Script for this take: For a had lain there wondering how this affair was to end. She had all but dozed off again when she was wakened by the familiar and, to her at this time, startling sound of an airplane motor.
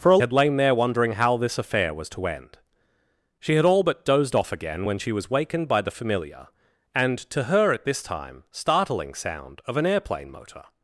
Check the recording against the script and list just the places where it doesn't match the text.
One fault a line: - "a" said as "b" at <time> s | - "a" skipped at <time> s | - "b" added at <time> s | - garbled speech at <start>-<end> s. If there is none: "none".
none